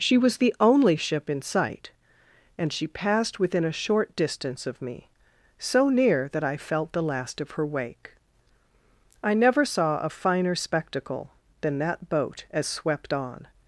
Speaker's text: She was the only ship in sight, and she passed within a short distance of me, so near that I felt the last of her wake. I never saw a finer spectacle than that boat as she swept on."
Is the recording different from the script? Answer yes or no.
yes